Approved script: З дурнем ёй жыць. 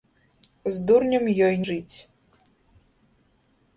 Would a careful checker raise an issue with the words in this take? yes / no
no